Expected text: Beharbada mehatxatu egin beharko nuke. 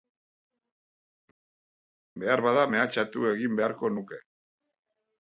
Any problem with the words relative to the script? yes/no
no